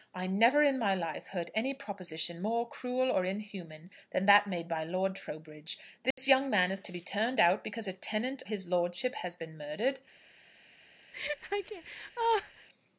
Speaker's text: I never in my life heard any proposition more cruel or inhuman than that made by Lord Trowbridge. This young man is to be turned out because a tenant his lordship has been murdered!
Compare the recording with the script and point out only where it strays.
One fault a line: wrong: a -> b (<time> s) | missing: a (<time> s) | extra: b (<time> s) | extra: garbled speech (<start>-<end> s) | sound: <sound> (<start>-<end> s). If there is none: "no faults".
sound: dropout (6.1-6.2 s)
sound: laugh (11.1-12.7 s)